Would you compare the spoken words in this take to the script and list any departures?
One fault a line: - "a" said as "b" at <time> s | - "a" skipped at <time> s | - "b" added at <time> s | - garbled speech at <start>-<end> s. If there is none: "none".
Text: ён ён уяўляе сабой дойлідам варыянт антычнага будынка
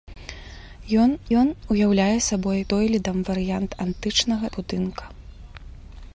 none